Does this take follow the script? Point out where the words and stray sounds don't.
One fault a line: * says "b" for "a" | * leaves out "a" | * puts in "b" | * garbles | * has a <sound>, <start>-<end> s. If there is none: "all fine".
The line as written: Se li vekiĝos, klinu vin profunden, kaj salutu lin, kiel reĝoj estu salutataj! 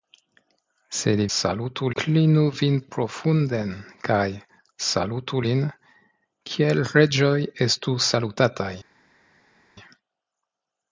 * says "salutu" for "vekiĝos"